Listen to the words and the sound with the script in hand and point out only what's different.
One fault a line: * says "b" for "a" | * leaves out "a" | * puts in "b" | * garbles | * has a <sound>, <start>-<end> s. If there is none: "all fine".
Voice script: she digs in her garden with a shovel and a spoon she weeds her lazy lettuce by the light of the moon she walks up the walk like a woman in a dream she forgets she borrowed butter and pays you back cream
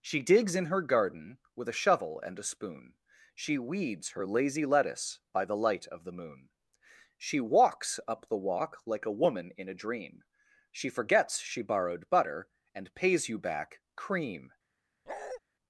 * has a bark, 15.1-15.4 s